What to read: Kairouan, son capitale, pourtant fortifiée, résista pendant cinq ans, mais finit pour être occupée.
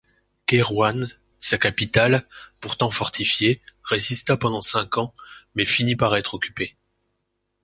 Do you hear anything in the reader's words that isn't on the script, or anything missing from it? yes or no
yes